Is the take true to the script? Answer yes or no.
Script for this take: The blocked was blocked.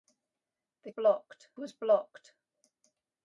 yes